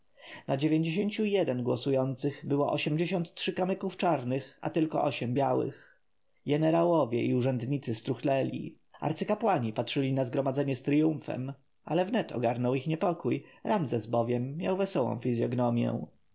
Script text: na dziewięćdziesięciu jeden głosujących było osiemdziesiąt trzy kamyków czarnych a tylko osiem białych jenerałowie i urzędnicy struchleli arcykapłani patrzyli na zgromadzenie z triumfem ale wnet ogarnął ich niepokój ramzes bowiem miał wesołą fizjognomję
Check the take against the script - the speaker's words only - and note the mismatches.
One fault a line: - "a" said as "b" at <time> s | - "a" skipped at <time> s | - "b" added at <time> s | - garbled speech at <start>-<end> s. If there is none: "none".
none